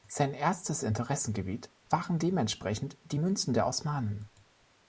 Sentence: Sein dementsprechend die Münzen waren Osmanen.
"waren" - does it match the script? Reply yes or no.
no